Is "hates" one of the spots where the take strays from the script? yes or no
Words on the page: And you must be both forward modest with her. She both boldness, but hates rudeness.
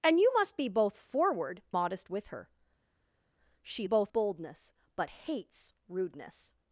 no